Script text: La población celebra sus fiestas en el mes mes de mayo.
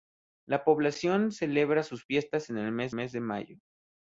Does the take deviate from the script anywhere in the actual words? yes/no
no